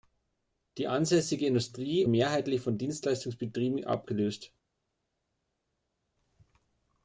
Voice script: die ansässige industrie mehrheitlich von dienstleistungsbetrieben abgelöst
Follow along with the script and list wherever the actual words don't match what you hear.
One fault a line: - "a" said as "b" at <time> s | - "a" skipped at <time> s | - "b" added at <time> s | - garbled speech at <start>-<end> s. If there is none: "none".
none